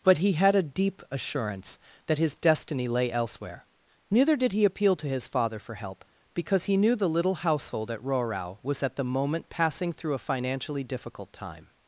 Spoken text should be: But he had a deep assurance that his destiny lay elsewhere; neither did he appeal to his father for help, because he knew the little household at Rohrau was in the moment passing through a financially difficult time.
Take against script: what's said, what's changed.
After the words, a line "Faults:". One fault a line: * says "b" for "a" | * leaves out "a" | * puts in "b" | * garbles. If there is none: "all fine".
But he had a deep assurance that his destiny lay elsewhere; neither did he appeal to his father for help, because he knew the little household at Rohrau was at the moment passing through a financially difficult time.
Faults:
* says "at" for "in"